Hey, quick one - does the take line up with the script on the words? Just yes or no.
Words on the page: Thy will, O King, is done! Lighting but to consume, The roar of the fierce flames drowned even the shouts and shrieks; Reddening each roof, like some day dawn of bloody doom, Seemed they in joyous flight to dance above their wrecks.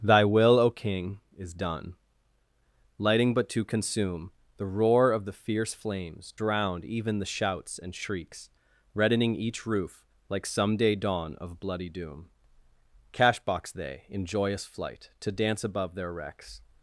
no